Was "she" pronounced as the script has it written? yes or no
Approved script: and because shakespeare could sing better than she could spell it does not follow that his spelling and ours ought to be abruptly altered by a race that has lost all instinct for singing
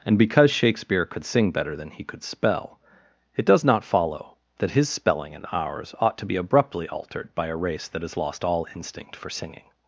no